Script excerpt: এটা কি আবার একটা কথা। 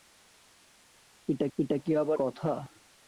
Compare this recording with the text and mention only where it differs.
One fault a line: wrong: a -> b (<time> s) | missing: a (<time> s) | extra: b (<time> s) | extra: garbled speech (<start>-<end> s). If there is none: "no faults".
extra: এটা (1.6 s)
missing: একটা (2.2 s)